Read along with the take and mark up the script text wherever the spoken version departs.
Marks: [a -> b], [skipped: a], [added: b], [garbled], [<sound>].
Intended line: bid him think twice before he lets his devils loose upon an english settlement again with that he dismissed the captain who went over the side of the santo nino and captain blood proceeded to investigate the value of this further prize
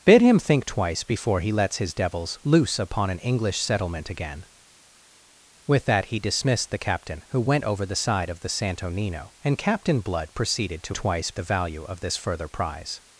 bid him think twice before he lets his devils loose upon an english settlement again with that he dismissed the captain who went over the side of the santo nino and captain blood proceeded to [investigate -> twice] the value of this further prize